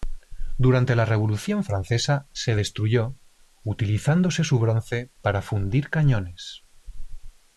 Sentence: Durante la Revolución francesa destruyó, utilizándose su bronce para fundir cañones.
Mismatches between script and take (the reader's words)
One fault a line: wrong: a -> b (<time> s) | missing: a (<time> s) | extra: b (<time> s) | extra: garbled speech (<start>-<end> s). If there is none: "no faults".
extra: se (2.3 s)